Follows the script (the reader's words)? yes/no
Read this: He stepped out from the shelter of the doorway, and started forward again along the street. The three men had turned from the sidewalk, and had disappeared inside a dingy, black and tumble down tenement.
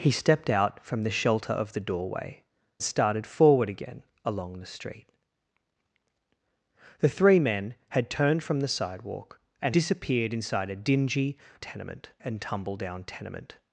no